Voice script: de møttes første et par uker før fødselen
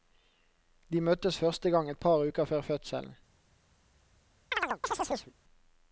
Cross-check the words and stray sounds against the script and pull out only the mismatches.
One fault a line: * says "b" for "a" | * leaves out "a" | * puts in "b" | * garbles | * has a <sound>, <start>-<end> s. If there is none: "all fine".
* puts in "gang"
* has a chirp, 4.5-5.3 s